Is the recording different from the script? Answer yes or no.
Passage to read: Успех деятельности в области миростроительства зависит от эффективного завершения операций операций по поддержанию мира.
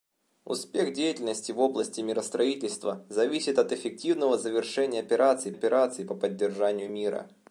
no